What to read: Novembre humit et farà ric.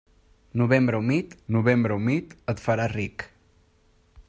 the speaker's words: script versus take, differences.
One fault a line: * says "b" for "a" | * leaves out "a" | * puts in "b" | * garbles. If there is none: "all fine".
* puts in "novembre humit"